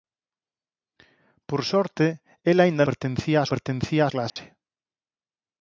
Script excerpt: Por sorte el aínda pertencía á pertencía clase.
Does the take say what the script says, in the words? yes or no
yes